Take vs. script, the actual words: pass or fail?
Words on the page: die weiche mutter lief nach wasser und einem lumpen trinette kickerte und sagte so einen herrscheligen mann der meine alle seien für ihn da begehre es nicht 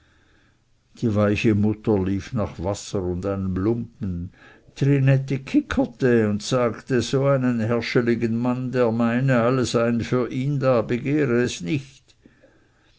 pass